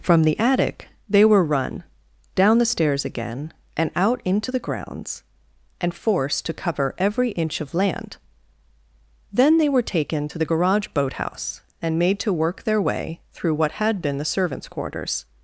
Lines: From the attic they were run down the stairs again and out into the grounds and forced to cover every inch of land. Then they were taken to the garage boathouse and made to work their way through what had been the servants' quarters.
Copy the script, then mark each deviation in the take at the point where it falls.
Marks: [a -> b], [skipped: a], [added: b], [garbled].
From the attic they were run down the stairs again and out into the grounds and forced to cover every inch of land. Then they were taken to the garage boathouse and made to work their way through what had been the servants' quarters.